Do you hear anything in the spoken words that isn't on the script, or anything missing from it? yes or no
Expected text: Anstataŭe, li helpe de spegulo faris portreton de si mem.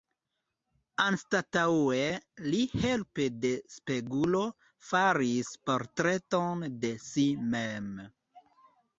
no